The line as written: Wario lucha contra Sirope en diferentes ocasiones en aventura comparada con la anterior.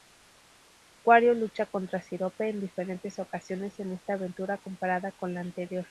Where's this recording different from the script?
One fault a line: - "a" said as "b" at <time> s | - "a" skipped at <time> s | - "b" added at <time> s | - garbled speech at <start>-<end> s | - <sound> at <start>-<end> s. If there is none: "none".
- "esta" added at 3.9 s